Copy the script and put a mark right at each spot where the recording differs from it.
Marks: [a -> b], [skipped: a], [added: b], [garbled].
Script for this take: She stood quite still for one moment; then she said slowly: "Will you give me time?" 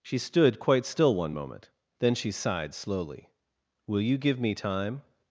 She stood quite still [skipped: for] one moment; then she [said -> sighed] slowly: "Will you give me time?"